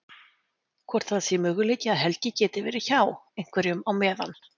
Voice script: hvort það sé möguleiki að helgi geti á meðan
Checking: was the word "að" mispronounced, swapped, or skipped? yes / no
no